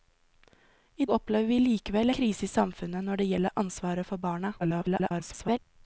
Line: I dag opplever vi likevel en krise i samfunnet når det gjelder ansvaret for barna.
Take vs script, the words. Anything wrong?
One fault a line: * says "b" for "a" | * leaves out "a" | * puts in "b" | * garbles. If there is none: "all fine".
* leaves out "dag"
* leaves out "en"
* garbles